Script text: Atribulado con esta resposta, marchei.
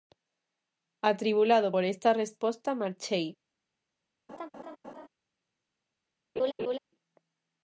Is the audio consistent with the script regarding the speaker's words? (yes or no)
no